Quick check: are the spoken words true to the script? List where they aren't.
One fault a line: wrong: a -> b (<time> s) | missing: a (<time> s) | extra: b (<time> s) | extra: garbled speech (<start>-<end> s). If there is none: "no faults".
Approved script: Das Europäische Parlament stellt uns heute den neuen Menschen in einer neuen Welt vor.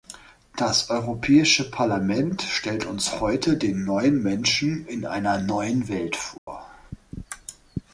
no faults